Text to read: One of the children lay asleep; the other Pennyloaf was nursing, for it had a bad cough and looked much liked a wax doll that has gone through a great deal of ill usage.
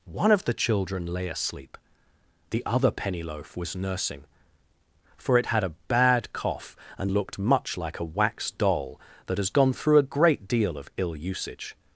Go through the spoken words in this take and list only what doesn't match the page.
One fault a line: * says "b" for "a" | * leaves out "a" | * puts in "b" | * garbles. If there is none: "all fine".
* says "like" for "liked"